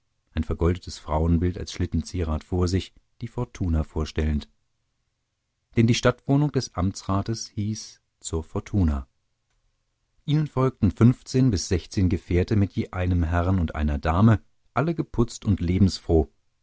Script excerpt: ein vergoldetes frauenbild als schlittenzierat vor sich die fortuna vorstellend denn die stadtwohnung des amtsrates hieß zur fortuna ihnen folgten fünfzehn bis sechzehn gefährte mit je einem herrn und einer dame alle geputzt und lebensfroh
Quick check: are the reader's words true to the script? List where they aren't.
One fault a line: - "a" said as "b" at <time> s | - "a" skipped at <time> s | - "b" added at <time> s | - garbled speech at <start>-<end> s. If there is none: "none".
none